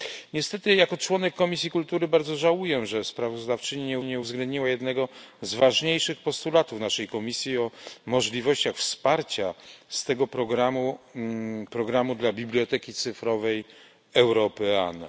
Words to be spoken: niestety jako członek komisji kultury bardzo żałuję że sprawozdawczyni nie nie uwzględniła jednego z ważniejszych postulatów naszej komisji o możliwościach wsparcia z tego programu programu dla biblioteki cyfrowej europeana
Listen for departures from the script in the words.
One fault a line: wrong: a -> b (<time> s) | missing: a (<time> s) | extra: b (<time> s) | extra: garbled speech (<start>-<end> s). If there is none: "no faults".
no faults